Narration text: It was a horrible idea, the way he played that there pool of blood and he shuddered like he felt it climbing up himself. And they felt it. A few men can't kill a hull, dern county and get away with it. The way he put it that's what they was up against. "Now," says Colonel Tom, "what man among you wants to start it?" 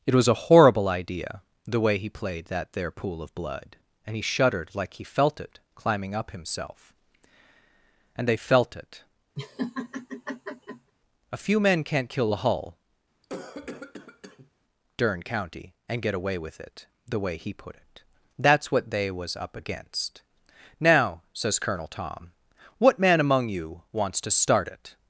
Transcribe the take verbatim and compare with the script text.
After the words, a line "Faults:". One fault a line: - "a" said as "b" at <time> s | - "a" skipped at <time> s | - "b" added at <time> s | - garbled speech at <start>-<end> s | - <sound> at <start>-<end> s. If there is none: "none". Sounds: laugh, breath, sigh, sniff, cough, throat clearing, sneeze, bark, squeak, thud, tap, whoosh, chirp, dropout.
It was a horrible idea, the way he played that there pool of blood and he shuddered like he felt it climbing up himself. And they felt it. A few men can't kill a hull, dern county and get away with it. The way he put it that's what they was up against. "Now," says Colonel Tom, "what man among you wants to start it?"
Faults:
- laugh at 9.4-10.9 s
- cough at 13.2-14.5 s